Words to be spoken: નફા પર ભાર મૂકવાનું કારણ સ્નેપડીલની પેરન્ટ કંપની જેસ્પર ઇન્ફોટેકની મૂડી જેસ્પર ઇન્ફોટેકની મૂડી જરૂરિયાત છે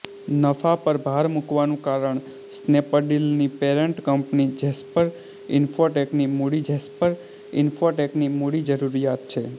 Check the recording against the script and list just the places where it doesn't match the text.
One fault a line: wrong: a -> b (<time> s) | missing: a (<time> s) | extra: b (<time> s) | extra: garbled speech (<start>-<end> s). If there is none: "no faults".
no faults